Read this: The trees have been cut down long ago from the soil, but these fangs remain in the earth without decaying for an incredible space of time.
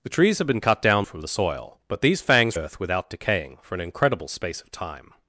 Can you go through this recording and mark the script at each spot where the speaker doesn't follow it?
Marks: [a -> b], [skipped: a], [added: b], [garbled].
The trees have been cut down [skipped: long ago] from the soil, but these fangs [skipped: remain in the] earth without decaying for an incredible space of time.